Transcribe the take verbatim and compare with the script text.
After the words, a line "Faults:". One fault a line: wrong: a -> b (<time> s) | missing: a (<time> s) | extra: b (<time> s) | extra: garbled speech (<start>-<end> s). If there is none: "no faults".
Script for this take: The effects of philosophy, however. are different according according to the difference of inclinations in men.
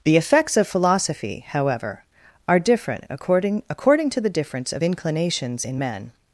The effects of philosophy, however. are different according according to the difference of inclinations in men.
Faults:
no faults